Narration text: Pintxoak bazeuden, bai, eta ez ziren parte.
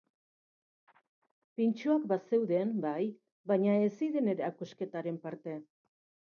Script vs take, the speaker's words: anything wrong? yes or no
yes